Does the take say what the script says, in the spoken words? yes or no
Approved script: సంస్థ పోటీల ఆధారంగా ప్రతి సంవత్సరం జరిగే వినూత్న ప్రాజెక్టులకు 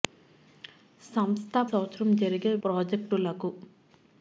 no